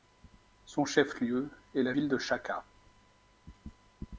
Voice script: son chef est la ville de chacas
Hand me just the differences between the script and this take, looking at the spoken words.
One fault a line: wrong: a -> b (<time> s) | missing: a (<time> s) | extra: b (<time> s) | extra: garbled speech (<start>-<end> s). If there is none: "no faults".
extra: lieu (1.2 s)